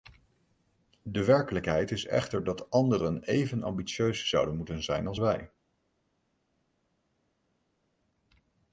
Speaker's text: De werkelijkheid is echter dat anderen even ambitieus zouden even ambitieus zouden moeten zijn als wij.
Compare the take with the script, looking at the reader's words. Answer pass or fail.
fail